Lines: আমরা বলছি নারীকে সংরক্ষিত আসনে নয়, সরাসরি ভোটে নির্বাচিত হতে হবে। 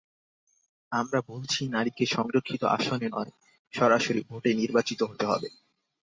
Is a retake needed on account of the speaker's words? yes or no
no